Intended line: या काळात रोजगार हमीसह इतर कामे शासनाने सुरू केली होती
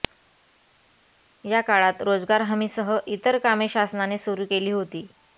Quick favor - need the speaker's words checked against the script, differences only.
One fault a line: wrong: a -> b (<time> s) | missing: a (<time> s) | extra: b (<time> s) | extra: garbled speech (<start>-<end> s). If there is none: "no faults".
no faults